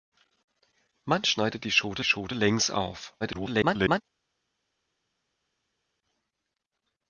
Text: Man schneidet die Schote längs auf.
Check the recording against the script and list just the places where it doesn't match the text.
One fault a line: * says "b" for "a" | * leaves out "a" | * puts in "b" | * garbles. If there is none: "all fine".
* puts in "Schote"
* garbles